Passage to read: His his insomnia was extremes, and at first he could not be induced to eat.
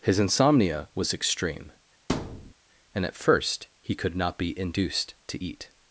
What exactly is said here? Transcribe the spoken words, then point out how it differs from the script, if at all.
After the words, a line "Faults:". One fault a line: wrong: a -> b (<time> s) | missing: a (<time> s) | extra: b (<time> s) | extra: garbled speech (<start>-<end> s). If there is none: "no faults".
His insomnia was extreme, and at first he could not be induced to eat.
Faults:
missing: his (0.2 s)
wrong: extremes -> extreme (1.1 s)